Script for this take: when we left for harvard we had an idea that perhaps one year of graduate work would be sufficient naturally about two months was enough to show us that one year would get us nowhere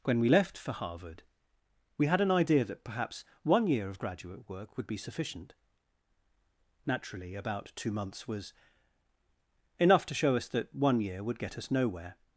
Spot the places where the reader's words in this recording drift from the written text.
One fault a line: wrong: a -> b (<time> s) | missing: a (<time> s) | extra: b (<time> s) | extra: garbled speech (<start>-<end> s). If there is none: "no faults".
no faults